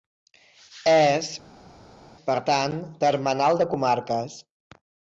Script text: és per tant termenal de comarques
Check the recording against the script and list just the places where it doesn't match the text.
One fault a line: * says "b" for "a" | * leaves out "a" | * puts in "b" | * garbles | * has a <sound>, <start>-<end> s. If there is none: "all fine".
all fine